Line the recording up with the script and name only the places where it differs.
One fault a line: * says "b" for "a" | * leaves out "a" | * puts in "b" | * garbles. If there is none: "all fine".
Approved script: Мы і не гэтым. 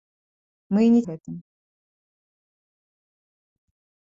all fine